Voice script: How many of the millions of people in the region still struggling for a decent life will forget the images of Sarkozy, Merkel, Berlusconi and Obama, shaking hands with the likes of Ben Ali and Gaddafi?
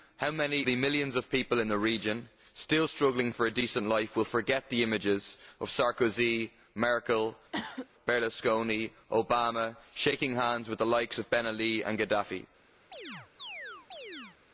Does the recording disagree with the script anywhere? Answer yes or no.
yes